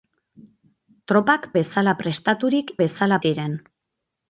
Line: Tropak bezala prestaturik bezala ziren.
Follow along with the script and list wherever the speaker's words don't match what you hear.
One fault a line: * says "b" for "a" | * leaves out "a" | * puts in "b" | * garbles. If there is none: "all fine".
all fine